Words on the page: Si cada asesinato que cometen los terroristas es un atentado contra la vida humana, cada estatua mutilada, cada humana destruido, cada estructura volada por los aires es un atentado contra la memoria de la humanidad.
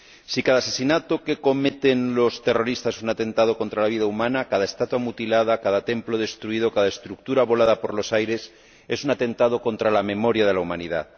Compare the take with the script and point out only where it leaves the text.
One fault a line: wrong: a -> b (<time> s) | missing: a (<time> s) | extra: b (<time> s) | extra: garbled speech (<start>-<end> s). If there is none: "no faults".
wrong: humana -> templo (5.9 s)